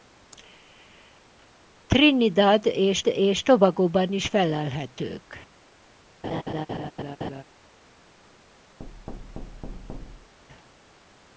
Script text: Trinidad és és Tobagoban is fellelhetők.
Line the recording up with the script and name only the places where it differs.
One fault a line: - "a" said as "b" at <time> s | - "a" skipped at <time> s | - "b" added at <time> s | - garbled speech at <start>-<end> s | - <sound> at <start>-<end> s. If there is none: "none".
- laugh at 6.2-7.4 s
- thud at 8.8-10.3 s